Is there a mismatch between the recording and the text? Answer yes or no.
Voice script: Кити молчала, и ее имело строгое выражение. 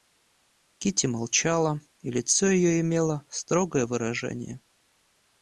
yes